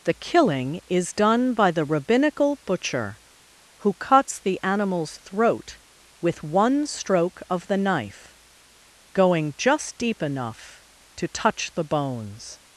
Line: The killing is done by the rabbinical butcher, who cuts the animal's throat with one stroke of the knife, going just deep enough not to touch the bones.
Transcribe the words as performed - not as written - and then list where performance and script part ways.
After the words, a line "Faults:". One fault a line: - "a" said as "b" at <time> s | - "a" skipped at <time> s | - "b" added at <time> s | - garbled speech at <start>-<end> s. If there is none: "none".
The killing is done by the rabbinical butcher, who cuts the animal's throat with one stroke of the knife, going just deep enough to touch the bones.
Faults:
- "not" skipped at 10.9 s